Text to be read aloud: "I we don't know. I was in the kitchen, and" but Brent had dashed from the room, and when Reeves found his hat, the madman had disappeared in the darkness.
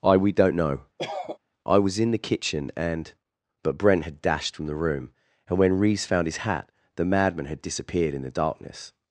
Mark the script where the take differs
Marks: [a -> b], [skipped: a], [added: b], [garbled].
"I we don't know. I was in the kitchen, and" but Brent had dashed from the room, and when Reeves found his hat, the madman had disappeared in the darkness.